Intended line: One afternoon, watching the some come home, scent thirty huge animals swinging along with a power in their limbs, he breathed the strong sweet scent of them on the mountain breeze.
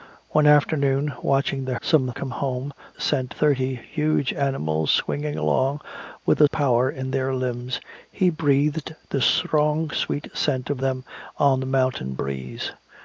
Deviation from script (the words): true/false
false